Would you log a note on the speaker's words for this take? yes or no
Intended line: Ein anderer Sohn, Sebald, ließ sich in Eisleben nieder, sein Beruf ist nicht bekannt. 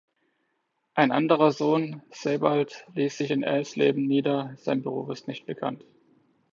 no